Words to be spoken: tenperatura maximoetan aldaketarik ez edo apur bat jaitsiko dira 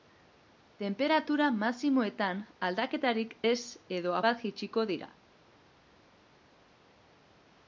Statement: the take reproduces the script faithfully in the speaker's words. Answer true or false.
false